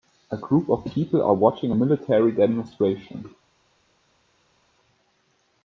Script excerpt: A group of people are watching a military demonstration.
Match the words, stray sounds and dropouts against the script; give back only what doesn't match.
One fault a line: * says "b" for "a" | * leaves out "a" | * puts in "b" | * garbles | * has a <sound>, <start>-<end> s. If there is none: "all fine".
all fine